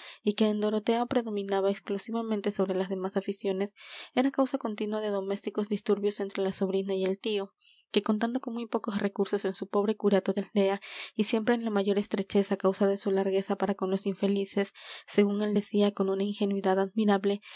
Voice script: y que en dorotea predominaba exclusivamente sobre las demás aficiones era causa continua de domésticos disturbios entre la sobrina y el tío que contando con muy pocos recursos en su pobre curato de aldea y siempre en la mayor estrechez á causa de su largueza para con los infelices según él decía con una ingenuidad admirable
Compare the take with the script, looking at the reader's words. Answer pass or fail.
pass